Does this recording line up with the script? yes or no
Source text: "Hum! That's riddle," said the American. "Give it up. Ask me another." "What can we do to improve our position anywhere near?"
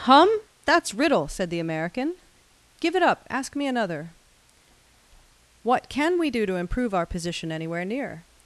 yes